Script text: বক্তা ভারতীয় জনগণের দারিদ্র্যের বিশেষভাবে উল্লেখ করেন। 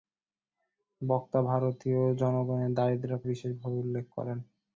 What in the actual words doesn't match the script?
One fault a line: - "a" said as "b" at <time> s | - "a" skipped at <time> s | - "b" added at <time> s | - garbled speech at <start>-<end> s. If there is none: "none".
none